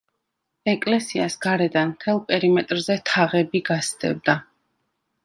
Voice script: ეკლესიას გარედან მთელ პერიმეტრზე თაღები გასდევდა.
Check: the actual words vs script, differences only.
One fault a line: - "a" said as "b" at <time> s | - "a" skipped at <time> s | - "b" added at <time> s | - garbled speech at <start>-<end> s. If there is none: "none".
none